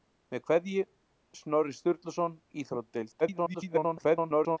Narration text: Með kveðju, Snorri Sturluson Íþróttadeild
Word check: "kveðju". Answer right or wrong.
right